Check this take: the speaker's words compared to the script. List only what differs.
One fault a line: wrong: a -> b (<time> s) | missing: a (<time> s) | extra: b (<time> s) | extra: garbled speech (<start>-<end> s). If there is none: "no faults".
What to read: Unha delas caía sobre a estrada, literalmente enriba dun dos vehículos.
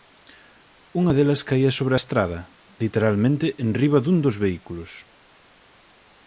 no faults